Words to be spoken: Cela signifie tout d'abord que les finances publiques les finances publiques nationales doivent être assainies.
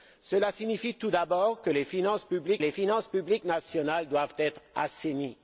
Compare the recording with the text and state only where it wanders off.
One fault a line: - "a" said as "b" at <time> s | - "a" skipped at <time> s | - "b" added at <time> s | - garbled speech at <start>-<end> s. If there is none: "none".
none